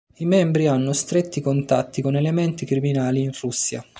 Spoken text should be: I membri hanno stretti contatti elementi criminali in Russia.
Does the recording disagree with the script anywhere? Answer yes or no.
yes